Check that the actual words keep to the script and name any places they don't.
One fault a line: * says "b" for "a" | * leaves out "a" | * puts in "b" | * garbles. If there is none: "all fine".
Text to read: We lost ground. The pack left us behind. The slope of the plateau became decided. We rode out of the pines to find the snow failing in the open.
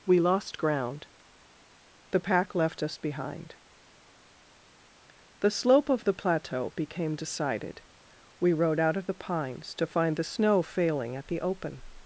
* says "at" for "in"